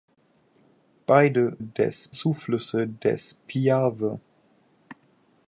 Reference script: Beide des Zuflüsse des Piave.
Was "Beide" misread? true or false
false